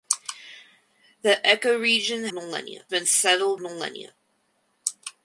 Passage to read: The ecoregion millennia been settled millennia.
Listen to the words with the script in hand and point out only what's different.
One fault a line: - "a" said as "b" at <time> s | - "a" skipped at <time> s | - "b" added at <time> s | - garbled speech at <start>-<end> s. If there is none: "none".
none